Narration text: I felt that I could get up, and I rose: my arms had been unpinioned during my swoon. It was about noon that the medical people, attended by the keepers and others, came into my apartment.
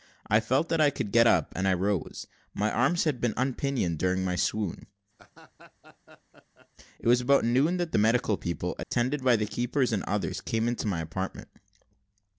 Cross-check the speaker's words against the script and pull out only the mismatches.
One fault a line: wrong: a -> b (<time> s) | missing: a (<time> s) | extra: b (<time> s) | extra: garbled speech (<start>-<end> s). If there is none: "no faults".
no faults